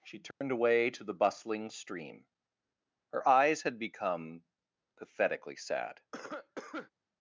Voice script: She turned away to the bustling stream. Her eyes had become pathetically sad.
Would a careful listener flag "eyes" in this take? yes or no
no